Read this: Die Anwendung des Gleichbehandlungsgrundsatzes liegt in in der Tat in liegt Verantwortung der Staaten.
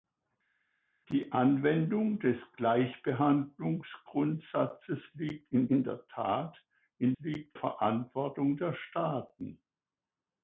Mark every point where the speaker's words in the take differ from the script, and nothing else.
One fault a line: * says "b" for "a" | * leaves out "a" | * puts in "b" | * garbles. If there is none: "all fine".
all fine